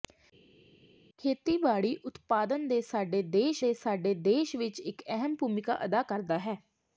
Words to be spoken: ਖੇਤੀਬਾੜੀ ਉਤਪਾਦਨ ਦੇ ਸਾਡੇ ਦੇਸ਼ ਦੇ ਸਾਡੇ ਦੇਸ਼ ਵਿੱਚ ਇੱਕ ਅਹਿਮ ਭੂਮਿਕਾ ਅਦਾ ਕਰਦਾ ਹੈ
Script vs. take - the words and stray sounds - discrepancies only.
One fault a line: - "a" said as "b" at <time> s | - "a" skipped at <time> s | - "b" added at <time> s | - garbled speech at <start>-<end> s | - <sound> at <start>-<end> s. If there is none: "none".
none